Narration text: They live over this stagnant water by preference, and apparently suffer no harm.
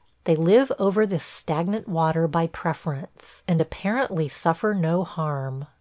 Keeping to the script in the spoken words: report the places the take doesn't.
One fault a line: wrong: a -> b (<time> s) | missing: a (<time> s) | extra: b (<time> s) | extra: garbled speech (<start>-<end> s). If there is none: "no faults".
no faults